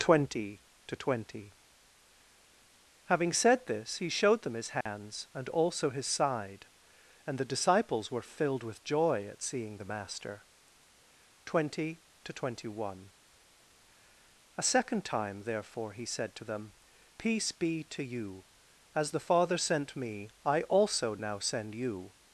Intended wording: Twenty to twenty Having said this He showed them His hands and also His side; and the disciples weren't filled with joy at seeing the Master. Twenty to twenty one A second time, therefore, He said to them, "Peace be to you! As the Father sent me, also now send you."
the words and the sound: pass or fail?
fail